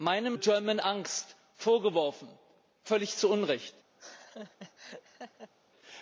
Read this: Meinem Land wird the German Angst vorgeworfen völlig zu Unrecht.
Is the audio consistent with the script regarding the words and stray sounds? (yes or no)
no